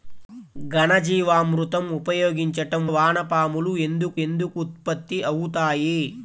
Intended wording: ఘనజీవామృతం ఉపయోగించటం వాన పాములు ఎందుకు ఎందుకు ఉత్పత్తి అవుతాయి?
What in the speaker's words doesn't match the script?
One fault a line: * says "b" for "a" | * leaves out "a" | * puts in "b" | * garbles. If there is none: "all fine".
all fine